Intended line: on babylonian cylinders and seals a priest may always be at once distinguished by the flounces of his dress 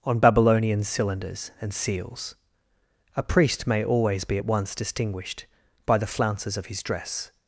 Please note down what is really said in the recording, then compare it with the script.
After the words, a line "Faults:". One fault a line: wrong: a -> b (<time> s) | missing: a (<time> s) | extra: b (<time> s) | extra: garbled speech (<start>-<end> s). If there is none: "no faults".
on babylonian cylinders and seals a priest may always be at once distinguished by the flounces of his dress
Faults:
no faults